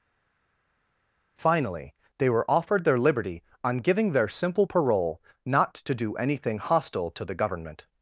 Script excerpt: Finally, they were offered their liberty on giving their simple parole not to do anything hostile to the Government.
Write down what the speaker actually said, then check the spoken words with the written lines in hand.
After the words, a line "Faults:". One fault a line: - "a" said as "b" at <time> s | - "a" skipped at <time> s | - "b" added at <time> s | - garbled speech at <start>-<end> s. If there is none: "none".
Finally, they were offered their liberty on giving their simple parole not to do anything hostile to the Government.
Faults:
none